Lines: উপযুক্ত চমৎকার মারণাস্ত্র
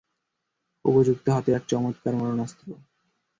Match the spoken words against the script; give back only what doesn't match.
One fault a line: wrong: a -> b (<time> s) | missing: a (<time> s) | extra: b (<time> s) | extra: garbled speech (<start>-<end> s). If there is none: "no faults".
extra: হাতে এক (1.3 s)